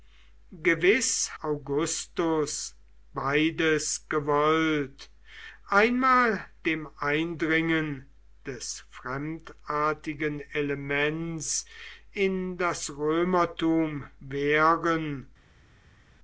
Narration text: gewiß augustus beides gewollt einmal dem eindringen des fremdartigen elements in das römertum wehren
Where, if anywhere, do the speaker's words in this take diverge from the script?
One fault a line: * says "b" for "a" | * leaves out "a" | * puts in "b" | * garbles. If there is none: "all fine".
all fine